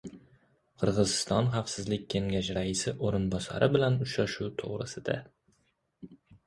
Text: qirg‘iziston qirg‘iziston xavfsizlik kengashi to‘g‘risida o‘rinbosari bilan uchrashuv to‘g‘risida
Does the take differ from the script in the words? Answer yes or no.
yes